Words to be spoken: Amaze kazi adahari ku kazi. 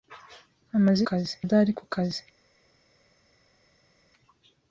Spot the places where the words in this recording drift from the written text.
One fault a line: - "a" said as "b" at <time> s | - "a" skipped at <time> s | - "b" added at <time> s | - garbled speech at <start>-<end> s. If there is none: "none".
none